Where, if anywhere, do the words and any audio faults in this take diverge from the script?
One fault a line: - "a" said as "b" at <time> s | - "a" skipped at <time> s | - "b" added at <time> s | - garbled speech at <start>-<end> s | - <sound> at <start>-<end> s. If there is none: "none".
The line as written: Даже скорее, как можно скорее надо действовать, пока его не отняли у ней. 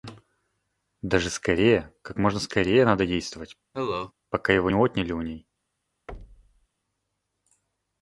- cough at 3.7-4.1 s
- "не" skipped at 4.7 s
- thud at 6.1-6.7 s